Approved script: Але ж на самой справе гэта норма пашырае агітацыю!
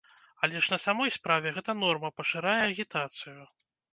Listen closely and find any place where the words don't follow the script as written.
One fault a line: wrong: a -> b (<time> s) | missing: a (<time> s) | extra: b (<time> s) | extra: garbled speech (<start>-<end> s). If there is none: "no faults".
no faults